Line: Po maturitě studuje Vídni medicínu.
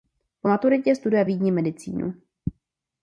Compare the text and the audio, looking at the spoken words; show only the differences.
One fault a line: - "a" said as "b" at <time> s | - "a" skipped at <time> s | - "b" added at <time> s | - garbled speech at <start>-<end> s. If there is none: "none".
none